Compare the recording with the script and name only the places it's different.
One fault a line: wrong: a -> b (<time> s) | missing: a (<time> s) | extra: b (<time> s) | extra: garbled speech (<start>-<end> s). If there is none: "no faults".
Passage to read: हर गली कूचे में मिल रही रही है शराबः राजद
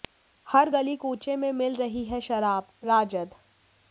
missing: रही (2.0 s)